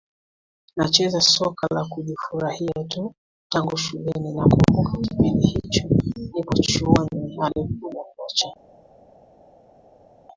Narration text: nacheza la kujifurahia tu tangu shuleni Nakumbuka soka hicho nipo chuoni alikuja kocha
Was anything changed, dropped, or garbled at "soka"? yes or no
yes